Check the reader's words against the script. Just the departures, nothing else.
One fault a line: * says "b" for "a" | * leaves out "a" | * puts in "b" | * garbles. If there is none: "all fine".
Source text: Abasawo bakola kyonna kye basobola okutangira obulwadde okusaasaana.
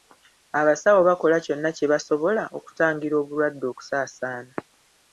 all fine